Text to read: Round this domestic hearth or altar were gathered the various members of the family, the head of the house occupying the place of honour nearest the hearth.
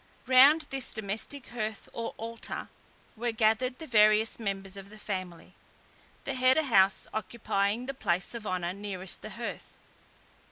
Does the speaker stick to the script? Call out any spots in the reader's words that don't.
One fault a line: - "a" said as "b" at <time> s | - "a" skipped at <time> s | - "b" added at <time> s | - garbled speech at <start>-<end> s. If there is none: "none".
- "of" skipped at 6.6 s